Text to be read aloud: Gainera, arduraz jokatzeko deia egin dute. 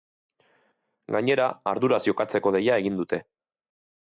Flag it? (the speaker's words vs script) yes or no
no